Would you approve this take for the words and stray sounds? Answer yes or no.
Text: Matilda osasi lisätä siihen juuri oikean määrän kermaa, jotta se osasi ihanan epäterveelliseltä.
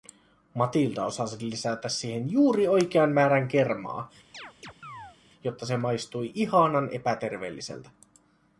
no